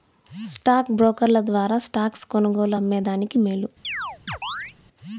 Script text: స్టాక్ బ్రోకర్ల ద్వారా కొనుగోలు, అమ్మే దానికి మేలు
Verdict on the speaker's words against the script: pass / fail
fail